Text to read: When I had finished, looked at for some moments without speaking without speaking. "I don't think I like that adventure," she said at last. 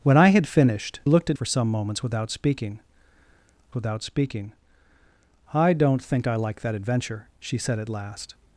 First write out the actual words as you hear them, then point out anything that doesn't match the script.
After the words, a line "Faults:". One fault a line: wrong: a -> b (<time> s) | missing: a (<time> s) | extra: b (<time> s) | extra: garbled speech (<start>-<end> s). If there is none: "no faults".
When I had finished, looked at for some moments without speaking without speaking. "I don't think I like that adventure," she said at last.
Faults:
no faults